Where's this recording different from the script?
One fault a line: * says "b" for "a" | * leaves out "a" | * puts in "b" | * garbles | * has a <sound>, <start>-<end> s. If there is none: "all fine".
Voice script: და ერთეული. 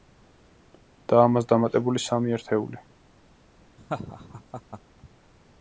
* puts in "ამას დამატებული სამი"
* has a laugh, 3.8-4.8 s